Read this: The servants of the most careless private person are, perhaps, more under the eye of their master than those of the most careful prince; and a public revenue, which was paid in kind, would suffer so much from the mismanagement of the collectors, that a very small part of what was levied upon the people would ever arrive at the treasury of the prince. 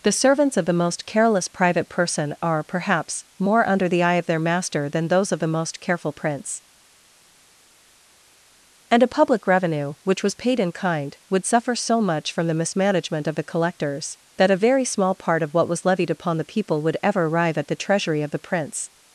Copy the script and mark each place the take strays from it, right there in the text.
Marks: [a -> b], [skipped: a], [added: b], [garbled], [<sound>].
The servants of the most careless private person are, perhaps, more under the eye of their master than those of the most careful prince; and a public revenue, which was paid in kind, would suffer so much from the mismanagement of the collectors, that a very small part of what was levied upon the people would ever arrive at the treasury of the prince.